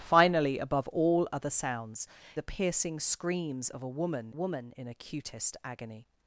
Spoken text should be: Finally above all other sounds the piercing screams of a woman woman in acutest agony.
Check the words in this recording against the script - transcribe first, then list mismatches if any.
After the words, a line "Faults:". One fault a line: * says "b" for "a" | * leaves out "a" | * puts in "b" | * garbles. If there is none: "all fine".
Finally above all other sounds the piercing screams of a woman woman in acutest agony.
Faults:
all fine